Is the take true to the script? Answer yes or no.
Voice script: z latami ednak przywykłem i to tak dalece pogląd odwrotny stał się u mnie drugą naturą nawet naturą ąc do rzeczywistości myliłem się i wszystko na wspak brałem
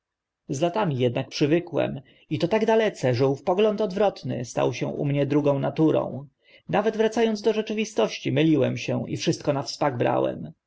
no